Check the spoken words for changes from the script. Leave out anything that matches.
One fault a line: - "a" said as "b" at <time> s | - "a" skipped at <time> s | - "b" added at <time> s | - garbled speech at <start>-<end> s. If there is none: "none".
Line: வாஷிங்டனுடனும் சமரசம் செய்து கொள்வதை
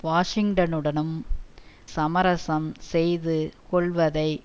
none